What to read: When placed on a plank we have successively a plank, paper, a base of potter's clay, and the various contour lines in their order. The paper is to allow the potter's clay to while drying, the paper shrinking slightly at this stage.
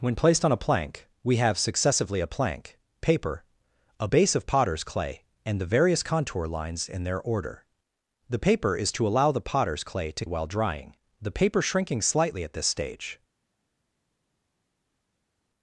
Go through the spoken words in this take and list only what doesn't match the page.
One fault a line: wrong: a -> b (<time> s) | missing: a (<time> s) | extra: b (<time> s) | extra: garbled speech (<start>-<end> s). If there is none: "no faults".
no faults